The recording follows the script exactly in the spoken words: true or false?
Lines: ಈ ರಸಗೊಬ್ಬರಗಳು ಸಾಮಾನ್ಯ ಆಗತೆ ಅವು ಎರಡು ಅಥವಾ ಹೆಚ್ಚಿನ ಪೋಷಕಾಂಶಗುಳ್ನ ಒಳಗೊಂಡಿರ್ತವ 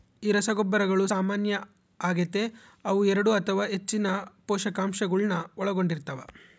true